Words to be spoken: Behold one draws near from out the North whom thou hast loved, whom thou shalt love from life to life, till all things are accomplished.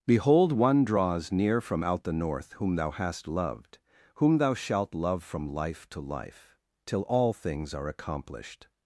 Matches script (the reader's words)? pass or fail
pass